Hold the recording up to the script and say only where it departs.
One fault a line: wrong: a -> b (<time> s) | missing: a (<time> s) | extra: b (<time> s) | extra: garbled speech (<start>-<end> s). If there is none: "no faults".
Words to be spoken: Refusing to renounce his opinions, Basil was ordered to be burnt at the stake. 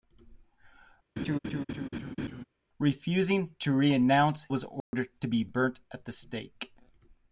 missing: his opinions Basil (4.5 s)